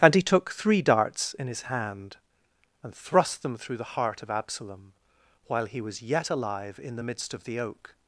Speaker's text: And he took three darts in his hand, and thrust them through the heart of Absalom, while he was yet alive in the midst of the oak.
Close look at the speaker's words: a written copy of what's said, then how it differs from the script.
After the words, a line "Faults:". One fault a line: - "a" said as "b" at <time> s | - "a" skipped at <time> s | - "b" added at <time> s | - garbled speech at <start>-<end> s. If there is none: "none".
And he took three darts in his hand, and thrust them through the heart of Absalom, while he was yet alive in the midst of the oak.
Faults:
none